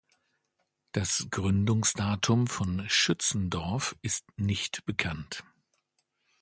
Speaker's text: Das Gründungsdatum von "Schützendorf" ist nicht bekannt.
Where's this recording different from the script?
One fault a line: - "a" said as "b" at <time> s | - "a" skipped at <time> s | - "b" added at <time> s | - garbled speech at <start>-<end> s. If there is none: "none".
none